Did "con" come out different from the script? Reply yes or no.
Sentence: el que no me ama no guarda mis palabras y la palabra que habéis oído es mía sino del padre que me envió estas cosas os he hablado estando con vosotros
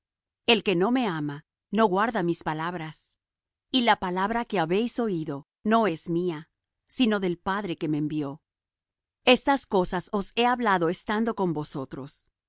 no